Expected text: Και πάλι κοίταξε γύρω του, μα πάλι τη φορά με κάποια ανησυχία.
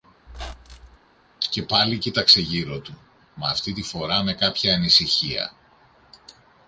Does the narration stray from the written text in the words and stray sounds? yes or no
yes